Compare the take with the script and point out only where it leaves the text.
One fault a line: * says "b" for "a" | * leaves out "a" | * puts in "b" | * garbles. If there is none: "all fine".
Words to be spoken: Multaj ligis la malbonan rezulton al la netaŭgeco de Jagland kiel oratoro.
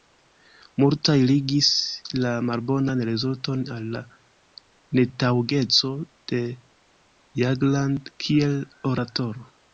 all fine